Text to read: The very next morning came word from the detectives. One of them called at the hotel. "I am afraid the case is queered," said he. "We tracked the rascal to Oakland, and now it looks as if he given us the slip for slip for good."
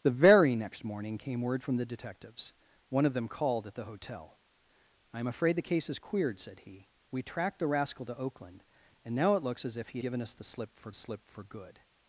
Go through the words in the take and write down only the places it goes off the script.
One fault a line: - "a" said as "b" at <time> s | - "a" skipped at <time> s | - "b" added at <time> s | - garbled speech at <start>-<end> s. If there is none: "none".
none